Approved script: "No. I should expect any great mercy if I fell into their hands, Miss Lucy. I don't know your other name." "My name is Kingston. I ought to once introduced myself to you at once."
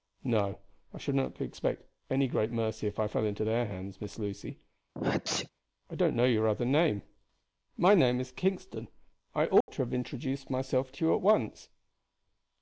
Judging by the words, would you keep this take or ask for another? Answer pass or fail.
fail